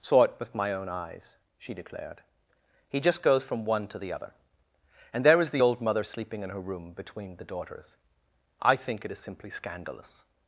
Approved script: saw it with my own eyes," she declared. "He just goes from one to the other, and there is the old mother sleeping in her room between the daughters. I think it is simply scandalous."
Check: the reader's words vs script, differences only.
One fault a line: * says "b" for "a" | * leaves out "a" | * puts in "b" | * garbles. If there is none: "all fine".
all fine